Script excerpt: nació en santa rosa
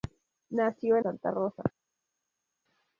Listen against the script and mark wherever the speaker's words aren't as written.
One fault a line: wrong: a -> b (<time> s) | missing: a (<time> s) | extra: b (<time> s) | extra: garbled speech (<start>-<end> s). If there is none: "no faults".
no faults